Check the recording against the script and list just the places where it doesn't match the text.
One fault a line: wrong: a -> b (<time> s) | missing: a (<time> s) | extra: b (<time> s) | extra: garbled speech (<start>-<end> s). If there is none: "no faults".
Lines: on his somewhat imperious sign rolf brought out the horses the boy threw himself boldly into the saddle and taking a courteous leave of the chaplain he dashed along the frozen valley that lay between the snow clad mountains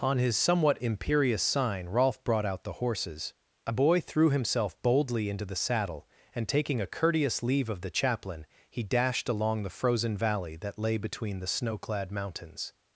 wrong: the -> a (3.7 s)